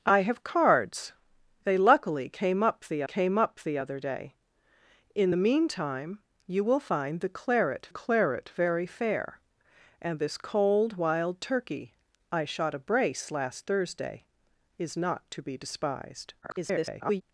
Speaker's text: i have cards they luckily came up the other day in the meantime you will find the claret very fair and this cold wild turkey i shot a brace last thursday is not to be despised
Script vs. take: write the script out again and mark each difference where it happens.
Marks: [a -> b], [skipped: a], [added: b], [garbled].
i have cards they luckily came up the [added: came up the] other day in the meantime you will find the claret [added: claret] very fair and this cold wild turkey i shot a brace last thursday is not to be despised [garbled]